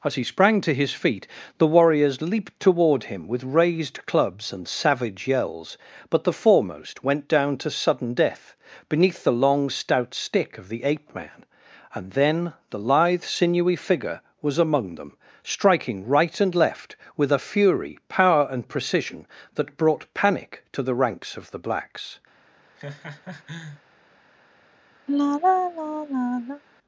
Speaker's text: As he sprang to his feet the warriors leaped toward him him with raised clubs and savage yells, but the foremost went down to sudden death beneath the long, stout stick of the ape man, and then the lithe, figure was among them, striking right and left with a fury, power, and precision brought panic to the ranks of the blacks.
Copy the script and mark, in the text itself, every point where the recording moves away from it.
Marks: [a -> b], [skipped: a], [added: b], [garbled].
As he sprang to his feet the warriors leaped toward him [skipped: him] with raised clubs and savage yells, but the foremost went down to sudden death beneath the long, stout stick of the ape man, and then the lithe, [added: sinewy] figure was among them, striking right and left with a fury, power, and precision [added: that] brought panic to the ranks of the blacks.